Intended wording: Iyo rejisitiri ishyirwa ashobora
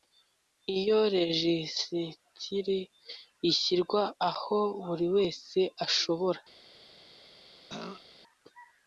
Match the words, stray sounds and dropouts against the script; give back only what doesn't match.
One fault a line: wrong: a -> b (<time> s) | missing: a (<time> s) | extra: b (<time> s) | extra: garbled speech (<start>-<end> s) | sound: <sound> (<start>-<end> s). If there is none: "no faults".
extra: aho buri wese (4.3 s)
sound: throat clearing (7.7-8.1 s)